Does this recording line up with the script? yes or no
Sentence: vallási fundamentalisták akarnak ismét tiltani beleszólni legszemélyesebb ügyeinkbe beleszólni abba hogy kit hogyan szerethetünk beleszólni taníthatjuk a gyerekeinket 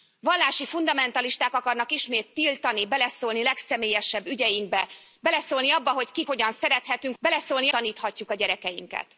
yes